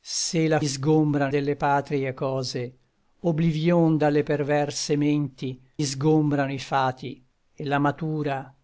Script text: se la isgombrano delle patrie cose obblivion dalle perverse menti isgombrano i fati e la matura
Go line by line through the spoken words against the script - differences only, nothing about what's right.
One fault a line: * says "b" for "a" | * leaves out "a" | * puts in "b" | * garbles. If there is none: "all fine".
all fine